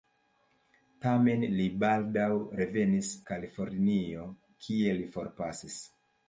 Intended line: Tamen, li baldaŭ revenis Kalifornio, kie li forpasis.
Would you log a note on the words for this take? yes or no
no